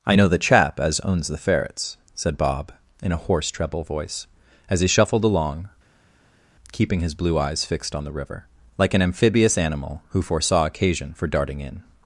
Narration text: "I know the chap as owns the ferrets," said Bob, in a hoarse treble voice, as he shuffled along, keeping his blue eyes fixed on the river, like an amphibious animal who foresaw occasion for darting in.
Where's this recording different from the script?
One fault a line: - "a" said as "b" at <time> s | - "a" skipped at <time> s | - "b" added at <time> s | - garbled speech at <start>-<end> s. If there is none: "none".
none